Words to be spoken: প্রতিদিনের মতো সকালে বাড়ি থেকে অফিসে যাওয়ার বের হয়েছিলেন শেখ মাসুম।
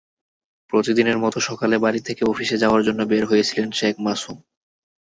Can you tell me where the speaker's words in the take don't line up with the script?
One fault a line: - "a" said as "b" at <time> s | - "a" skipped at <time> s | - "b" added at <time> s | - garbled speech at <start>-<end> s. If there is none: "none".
- "জন্য" added at 2.9 s